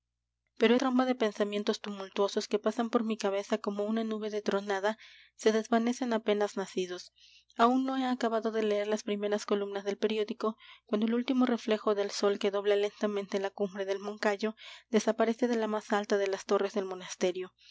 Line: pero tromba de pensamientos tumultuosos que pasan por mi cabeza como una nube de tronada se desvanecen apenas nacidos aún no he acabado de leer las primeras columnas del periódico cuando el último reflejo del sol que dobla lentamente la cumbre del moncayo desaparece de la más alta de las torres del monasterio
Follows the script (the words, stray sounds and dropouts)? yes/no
yes